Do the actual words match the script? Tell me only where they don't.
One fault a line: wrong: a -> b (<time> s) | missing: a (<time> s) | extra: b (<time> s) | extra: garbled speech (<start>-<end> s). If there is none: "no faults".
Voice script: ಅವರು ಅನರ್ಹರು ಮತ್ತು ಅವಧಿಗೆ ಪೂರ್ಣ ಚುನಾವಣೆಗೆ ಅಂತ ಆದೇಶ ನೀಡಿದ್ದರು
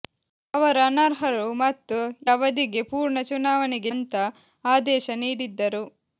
no faults